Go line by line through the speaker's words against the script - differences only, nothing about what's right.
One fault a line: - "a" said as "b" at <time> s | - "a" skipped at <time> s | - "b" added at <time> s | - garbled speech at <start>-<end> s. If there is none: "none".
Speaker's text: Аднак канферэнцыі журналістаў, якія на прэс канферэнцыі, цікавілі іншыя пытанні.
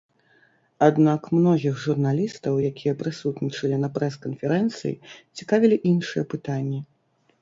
- "канферэнцыі" said as "многіх" at 1.4 s
- "прысутнічалі" added at 3.0 s